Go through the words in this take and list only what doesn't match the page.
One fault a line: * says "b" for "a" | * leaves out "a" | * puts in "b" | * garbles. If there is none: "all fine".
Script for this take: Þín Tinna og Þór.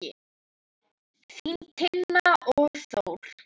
all fine